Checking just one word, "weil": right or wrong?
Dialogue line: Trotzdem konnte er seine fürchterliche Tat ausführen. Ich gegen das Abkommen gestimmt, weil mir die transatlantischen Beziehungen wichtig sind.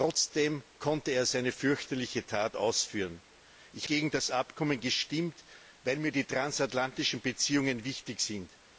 right